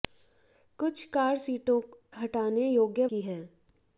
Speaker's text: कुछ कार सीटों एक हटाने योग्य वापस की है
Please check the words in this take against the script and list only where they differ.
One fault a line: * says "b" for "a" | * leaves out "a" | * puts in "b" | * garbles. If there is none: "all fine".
* leaves out "एक"
* leaves out "वापस"